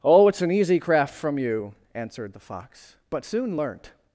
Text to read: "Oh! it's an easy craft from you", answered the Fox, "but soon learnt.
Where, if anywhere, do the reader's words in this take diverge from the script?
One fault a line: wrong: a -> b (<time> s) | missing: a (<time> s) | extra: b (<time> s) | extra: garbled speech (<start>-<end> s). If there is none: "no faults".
no faults